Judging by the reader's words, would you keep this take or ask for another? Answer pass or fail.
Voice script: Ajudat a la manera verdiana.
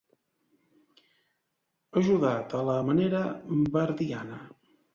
pass